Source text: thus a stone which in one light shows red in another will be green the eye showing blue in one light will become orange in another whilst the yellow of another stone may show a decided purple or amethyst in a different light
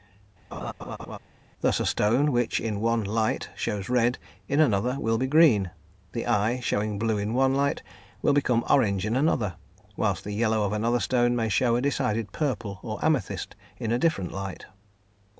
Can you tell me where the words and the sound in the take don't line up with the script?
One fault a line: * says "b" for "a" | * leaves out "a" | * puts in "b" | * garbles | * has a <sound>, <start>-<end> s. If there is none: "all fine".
* has a laugh, 0.5-1.2 s